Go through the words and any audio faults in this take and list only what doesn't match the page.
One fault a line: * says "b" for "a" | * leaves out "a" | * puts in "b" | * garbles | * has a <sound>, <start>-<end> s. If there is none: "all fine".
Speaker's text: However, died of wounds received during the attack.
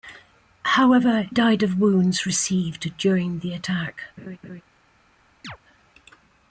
* has a laugh, 4.2-4.6 s
* has a chirp, 5.4-5.6 s